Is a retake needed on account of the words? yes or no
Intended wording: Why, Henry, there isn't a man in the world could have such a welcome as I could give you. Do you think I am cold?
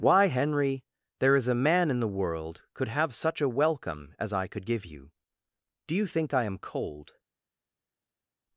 yes